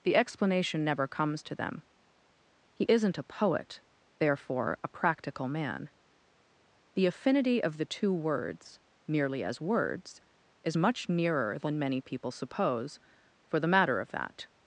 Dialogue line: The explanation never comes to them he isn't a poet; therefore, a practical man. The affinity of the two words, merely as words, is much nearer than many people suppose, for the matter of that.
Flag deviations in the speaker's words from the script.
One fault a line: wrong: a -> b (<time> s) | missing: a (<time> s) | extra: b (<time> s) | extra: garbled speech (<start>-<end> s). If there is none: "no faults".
no faults